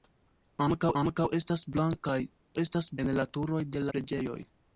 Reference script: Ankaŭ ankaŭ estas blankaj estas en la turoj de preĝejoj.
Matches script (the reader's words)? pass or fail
pass